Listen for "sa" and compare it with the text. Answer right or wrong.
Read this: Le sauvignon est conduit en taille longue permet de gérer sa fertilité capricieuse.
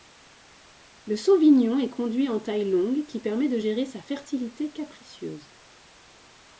right